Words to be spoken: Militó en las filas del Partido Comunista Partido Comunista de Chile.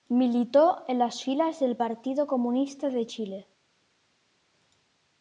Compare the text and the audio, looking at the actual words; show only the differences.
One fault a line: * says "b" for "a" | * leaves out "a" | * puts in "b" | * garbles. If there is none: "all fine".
* leaves out "Partido Comunista"